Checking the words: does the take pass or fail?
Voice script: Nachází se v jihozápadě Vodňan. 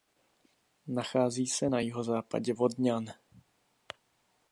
fail